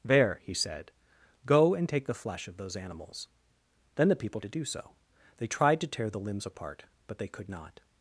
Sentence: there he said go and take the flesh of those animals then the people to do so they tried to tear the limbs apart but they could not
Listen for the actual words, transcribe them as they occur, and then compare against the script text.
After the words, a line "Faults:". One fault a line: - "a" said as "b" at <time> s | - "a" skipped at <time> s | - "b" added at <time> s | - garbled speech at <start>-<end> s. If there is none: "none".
there he said go and take the flesh of those animals then the people to do so they tried to tear the limbs apart but they could not
Faults:
none